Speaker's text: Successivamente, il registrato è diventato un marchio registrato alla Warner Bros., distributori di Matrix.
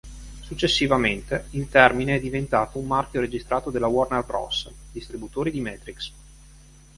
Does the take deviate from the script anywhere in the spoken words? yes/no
yes